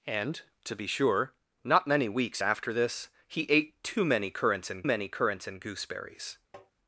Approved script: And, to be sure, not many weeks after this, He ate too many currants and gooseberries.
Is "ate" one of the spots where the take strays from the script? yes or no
no